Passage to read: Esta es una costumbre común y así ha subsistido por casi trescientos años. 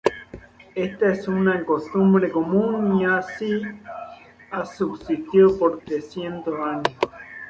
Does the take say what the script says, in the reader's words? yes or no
no